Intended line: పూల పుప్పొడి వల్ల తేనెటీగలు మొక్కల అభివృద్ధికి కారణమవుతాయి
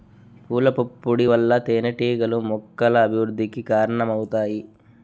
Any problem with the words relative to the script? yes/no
no